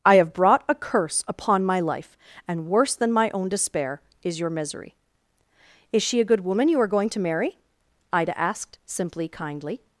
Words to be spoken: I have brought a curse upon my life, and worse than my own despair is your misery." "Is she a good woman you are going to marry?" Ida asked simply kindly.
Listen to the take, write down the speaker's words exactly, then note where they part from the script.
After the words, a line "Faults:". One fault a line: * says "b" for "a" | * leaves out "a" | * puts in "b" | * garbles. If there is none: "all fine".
I have brought a curse upon my life, and worse than my own despair is your misery." "Is she a good woman you are going to marry?" Ida asked simply kindly.
Faults:
all fine